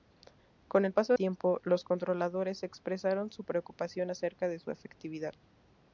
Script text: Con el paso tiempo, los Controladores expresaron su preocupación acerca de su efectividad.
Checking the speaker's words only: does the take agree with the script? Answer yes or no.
yes